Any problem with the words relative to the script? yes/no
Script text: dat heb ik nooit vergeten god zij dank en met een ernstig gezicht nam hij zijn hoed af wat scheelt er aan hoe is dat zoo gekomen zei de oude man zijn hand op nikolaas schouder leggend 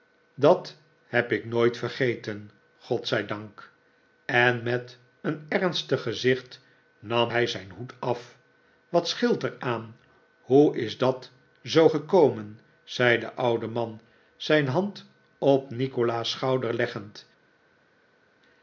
no